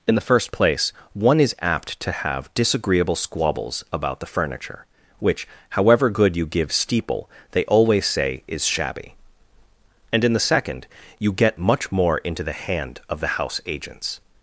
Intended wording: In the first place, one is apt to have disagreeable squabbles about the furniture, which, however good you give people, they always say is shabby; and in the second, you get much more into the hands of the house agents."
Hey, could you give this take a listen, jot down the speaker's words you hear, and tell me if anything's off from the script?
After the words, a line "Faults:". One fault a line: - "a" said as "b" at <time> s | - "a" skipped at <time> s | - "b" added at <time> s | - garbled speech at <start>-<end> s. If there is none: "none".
In the first place, one is apt to have disagreeable squabbles about the furniture, which, however good you give steeple, they always say is shabby; and in the second, you get much more into the hand of the house agents."
Faults:
- "people" said as "steeple" at 6.7 s
- "hands" said as "hand" at 12.5 s